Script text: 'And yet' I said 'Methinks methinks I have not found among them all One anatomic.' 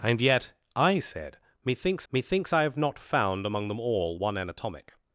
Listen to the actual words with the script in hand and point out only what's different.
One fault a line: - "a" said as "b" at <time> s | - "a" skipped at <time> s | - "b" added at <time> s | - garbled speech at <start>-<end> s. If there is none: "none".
none